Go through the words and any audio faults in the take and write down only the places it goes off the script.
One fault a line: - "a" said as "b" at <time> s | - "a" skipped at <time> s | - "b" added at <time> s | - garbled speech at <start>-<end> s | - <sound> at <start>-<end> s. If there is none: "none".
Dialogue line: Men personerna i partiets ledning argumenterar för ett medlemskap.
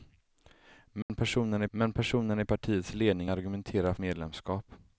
- dropout at 1.0-1.1 s
- "men personerna" added at 1.7 s
- "för ett" skipped at 3.9 s